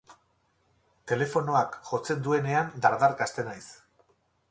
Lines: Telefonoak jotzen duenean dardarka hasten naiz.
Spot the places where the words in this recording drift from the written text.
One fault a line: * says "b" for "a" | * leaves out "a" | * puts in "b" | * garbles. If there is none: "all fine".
all fine